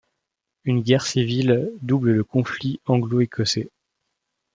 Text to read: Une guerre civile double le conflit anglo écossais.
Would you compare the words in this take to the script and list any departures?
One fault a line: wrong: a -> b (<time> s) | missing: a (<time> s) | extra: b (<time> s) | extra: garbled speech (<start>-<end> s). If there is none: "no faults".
no faults